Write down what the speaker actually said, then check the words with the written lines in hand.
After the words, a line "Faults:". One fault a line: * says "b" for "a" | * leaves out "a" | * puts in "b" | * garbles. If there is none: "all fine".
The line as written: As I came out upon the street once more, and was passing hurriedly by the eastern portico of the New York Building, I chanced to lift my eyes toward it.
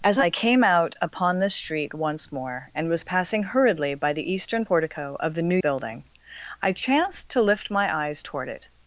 As I came out upon the street once more, and was passing hurriedly by the eastern portico of the New Building, I chanced to lift my eyes toward it.
Faults:
* leaves out "York"